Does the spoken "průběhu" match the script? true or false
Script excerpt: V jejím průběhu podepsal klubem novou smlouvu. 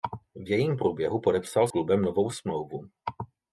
true